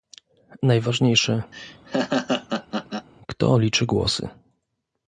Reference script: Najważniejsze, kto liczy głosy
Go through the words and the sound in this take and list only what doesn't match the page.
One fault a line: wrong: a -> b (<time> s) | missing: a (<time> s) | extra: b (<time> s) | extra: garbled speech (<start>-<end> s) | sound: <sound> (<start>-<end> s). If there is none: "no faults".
sound: laugh (1.5-3.1 s)